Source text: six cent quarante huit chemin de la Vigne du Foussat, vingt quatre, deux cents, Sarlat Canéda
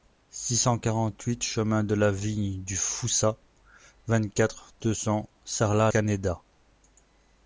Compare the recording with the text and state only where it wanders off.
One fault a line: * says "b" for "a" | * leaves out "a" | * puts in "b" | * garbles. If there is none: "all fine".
all fine